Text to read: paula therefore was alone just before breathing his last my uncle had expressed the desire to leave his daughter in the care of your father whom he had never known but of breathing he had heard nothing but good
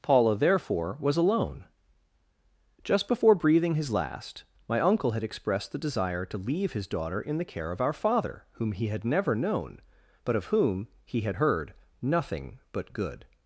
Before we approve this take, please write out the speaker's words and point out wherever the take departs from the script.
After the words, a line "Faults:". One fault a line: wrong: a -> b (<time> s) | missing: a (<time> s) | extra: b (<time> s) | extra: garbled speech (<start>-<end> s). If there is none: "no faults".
paula therefore was alone just before breathing his last my uncle had expressed the desire to leave his daughter in the care of our father whom he had never known but of whom he had heard nothing but good
Faults:
wrong: your -> our (7.8 s)
wrong: breathing -> whom (10.4 s)